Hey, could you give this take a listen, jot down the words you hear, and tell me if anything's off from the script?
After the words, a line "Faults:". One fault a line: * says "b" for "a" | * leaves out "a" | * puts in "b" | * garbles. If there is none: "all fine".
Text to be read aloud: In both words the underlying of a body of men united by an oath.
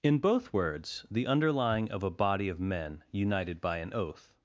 In both words the underlying of a body of men united by an oath.
Faults:
all fine